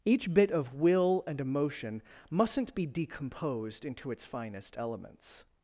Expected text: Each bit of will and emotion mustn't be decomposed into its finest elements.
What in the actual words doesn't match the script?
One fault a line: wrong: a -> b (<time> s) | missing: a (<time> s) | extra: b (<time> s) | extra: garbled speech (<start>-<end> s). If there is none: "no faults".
no faults